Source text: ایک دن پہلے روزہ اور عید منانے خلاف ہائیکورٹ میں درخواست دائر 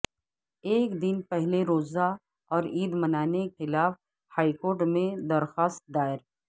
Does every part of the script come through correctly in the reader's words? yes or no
yes